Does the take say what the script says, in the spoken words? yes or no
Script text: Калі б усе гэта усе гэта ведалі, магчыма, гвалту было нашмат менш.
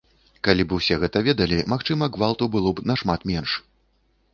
no